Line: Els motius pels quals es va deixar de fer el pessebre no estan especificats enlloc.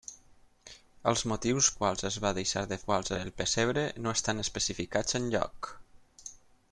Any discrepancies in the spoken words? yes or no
yes